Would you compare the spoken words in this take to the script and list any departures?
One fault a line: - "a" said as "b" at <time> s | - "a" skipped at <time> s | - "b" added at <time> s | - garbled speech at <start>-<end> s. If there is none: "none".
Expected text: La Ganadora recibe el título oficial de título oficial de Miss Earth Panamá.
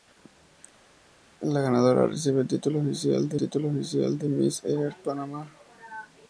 none